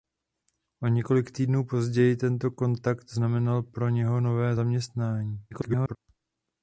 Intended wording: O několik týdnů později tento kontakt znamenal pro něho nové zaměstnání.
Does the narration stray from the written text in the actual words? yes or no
yes